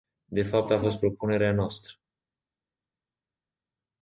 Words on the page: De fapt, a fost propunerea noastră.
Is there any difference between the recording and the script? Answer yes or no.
no